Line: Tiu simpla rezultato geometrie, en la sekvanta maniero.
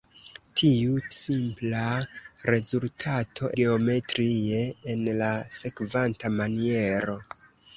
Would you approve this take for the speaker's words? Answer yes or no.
yes